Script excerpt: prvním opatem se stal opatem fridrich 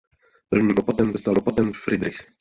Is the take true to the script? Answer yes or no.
yes